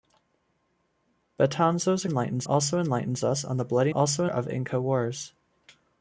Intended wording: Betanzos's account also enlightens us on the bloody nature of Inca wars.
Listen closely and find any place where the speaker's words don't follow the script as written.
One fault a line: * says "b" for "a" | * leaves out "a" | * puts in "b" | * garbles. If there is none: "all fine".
* says "enlightens" for "account"
* says "also" for "nature"